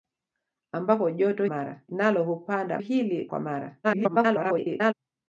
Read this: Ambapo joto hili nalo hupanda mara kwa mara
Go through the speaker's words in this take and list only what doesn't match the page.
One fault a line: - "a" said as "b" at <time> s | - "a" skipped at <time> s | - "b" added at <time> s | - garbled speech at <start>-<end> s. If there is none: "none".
- "hili" said as "mara" at 1.5 s
- "mara" said as "hili" at 2.8 s
- garbled speech at 3.8-4.9 s